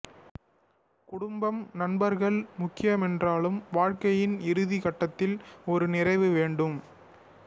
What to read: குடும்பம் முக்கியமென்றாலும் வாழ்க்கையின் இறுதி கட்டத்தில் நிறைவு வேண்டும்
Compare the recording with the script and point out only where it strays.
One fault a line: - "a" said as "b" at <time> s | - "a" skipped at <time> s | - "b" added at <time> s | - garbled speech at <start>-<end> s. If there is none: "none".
- "நண்பர்கள்" added at 1.7 s
- "ஒரு" added at 5.7 s